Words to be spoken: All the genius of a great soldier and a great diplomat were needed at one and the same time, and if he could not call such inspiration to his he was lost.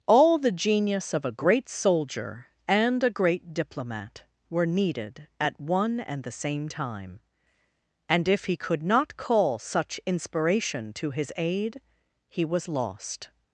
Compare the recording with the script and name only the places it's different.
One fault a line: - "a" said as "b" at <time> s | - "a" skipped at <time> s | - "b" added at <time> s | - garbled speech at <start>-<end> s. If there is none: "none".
- "aid" added at 11.4 s